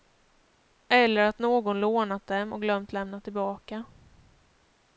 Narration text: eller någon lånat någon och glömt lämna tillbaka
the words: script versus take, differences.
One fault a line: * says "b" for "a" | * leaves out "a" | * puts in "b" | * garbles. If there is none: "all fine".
* puts in "att"
* says "dem" for "någon"